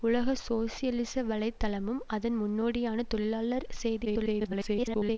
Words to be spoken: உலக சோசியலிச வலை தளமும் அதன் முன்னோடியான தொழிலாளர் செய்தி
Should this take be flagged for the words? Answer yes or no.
yes